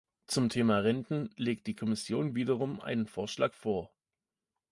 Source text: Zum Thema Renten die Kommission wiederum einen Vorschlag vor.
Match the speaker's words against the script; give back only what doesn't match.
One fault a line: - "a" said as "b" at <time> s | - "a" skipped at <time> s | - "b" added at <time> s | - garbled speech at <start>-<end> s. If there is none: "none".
- "legt" added at 1.4 s